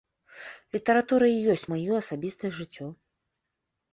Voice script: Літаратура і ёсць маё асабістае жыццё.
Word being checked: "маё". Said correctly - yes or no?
yes